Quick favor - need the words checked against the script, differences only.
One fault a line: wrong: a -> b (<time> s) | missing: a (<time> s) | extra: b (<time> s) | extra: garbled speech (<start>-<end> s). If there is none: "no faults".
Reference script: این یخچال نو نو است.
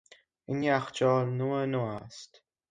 no faults